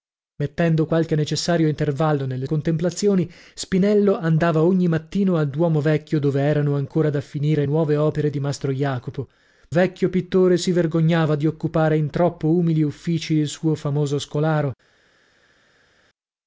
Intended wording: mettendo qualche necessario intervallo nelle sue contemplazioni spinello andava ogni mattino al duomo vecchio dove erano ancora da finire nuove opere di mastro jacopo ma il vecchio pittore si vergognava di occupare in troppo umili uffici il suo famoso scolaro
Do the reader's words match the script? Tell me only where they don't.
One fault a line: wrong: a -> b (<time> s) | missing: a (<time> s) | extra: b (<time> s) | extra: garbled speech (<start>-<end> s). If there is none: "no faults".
missing: sue (2.5 s)
missing: ma il (9.3 s)